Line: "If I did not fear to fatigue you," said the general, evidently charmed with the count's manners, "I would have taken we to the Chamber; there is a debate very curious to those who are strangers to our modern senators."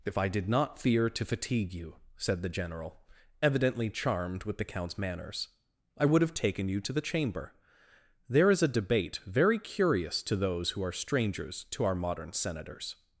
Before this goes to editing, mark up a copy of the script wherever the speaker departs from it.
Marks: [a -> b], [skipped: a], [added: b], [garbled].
"If I did not fear to fatigue you," said the general, evidently charmed with the count's manners, "I would have taken [we -> you] to the Chamber; there is a debate very curious to those who are strangers to our modern senators."